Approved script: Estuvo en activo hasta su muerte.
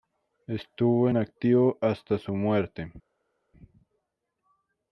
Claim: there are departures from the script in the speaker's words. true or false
false